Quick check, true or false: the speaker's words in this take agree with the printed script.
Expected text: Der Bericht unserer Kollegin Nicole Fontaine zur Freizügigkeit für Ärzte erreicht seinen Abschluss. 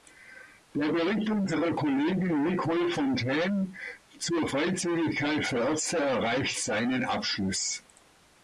true